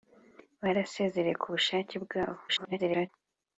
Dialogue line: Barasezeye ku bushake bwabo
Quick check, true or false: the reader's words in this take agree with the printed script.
false